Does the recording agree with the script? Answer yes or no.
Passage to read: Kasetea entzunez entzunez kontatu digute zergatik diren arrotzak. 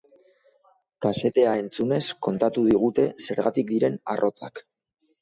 no